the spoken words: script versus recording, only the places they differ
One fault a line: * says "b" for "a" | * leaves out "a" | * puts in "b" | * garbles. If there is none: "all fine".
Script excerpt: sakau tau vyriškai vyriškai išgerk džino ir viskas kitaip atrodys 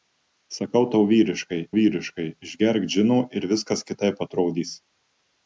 all fine